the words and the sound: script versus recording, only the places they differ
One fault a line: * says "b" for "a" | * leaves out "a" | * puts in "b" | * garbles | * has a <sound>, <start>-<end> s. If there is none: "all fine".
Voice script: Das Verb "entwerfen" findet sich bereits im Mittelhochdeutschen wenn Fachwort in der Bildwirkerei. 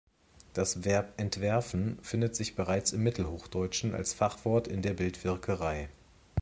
* says "als" for "wenn"